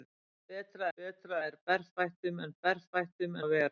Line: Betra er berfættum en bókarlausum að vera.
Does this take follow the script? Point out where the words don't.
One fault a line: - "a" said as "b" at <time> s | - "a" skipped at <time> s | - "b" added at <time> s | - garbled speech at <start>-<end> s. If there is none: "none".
- "betra" added at 1.0 s
- "bókarlausum" said as "berfættum" at 2.7 s